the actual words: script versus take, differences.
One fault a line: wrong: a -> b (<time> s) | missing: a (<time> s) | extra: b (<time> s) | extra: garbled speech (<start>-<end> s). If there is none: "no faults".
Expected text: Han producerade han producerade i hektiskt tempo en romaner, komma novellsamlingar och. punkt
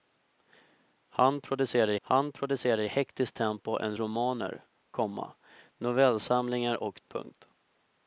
no faults